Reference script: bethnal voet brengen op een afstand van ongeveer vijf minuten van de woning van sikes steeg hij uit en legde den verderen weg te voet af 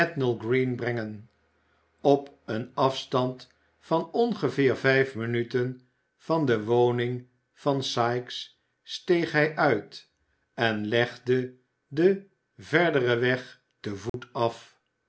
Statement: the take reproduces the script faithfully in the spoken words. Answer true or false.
false